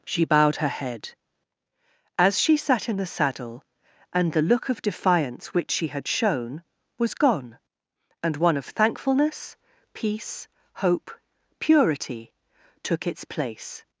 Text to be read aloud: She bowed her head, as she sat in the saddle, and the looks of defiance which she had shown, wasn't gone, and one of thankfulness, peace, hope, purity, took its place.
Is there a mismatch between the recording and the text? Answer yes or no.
yes